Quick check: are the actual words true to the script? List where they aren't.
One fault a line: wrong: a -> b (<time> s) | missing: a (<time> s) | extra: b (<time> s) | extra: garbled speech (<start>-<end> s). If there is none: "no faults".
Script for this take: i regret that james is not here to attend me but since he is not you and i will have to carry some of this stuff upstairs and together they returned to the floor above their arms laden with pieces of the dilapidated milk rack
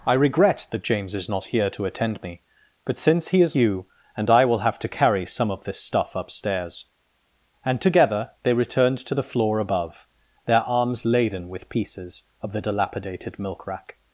missing: not (3.5 s)